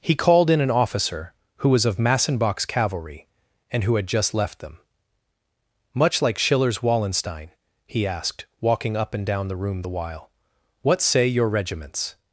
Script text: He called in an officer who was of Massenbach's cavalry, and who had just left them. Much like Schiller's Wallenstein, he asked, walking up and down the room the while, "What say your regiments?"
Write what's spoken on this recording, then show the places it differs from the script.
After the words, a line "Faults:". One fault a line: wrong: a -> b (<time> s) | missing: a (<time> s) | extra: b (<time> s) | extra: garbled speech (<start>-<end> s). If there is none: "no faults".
He called in an officer who was of Massenbach's cavalry, and who had just left them. Much like Schiller's Wallenstein, he asked, walking up and down the room the while, "What say your regiments?"
Faults:
no faults